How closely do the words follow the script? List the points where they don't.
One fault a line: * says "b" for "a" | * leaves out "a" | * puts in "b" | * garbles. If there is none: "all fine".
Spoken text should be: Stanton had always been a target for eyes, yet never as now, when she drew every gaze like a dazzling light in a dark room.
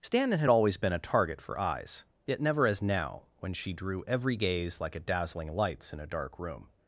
* says "lights" for "light"